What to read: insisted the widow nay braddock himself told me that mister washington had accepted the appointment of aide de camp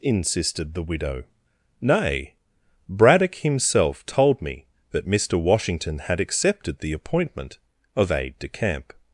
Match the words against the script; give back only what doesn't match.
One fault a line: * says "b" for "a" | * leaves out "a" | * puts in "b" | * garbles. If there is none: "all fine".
all fine